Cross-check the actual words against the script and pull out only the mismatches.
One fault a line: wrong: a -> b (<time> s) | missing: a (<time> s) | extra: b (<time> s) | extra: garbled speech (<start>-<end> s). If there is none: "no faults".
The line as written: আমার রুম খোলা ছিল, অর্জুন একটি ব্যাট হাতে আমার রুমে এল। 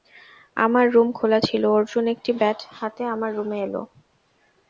no faults